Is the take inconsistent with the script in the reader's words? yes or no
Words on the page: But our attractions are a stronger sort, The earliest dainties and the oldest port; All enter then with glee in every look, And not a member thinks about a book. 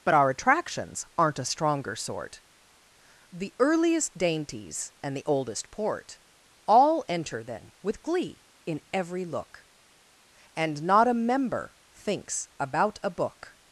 yes